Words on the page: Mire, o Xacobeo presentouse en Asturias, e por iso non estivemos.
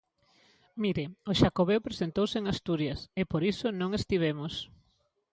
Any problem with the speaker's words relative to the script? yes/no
no